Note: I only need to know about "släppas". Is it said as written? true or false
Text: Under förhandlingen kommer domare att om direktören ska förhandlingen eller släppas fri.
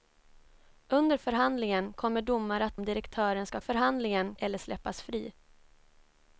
true